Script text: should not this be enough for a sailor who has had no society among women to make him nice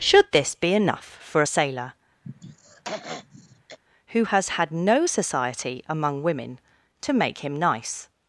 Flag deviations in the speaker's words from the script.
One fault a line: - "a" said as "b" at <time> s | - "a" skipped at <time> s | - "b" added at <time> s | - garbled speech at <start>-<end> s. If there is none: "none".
- "not" skipped at 0.3 s